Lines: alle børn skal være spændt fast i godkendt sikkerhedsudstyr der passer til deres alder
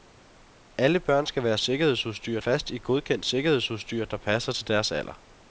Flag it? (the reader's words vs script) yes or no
yes